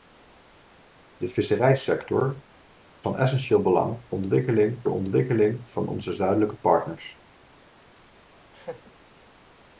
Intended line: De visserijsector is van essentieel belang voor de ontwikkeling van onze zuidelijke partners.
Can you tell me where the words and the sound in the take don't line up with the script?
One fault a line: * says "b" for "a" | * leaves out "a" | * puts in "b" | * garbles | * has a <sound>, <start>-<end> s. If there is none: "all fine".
* leaves out "is"
* says "ontwikkeling" for "voor"
* has a laugh, 8.5-8.9 s